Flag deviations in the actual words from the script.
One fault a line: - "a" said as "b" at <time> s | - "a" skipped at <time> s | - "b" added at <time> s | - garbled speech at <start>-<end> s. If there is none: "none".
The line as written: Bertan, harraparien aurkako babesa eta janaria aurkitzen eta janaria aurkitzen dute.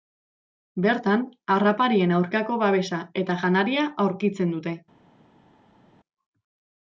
- "eta janaria aurkitzen" skipped at 4.6 s